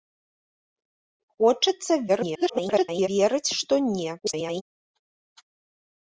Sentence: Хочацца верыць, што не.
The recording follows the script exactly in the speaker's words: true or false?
false